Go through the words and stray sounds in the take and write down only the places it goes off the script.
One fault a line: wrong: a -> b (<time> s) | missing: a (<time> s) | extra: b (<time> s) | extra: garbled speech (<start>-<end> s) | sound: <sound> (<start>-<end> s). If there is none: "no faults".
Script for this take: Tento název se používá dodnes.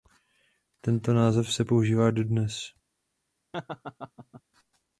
sound: laugh (3.5-4.4 s)